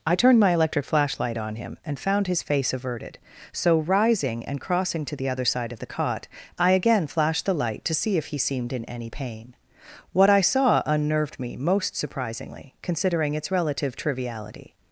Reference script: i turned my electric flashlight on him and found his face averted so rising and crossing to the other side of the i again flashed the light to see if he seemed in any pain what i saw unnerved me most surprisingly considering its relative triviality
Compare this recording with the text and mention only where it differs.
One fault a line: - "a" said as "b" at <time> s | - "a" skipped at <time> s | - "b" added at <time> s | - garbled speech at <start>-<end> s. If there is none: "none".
- "cot" added at 5.9 s